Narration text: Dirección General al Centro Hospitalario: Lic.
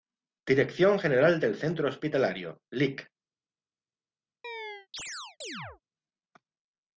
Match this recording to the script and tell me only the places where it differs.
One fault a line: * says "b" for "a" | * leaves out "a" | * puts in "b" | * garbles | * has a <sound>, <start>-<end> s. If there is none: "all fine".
* says "del" for "al"
* has a chirp, 4.4-5.8 s